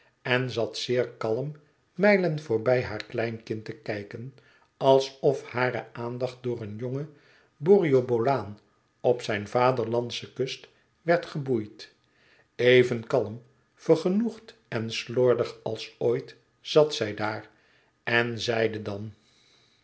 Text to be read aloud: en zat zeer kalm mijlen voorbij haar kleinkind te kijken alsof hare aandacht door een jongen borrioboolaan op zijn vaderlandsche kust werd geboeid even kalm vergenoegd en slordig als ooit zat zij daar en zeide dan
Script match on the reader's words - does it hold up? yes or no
yes